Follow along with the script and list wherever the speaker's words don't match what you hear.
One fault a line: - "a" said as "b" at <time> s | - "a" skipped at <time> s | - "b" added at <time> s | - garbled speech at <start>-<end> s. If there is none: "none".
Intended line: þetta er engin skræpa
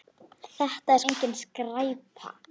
none